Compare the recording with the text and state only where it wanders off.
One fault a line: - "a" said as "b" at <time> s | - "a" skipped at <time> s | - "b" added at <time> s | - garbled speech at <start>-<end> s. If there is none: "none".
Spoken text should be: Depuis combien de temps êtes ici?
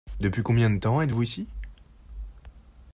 - "vous" added at 1.1 s